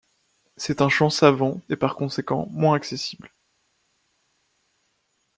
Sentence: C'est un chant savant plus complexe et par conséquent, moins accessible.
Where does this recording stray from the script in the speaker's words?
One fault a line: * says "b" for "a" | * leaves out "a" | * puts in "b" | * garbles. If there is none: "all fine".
* leaves out "plus complexe"